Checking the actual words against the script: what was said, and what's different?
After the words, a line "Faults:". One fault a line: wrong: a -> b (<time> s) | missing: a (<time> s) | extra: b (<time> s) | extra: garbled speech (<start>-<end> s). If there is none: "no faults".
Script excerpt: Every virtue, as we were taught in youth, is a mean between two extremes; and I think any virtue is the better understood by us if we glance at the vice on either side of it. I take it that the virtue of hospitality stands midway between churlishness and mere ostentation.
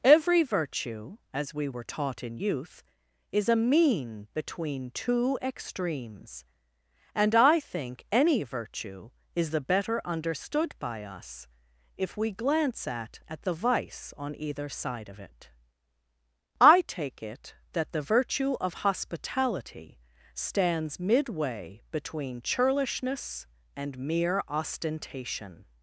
Every virtue, as we were taught in youth, is a mean between two extremes; and I think any virtue is the better understood by us if we glance at at the vice on either side of it. I take it that the virtue of hospitality stands midway between churlishness and mere ostentation.
Faults:
extra: at (13.3 s)